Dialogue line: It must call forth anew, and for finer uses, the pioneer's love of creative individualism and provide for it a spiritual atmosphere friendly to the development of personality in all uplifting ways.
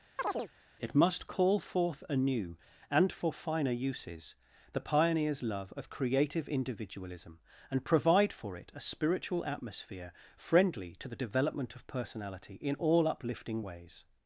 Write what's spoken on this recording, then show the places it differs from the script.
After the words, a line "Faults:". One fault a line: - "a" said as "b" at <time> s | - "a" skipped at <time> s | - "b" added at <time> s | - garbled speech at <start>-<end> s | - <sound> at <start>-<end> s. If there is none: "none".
It must call forth anew, and for finer uses, the pioneer's love of creative individualism and provide for it a spiritual atmosphere friendly to the development of personality in all uplifting ways.
Faults:
- chirp at 0.2-0.5 s